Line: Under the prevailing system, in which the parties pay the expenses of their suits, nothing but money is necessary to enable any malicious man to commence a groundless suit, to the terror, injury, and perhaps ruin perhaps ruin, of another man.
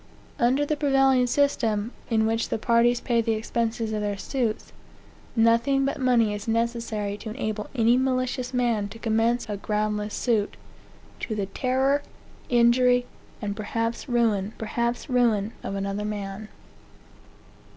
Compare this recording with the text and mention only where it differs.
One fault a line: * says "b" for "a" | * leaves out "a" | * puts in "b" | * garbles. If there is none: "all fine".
all fine